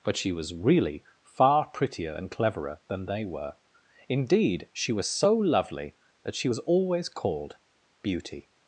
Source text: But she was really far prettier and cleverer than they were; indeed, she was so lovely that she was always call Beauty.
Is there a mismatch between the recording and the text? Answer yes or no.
yes